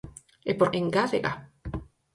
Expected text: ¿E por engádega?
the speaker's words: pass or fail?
pass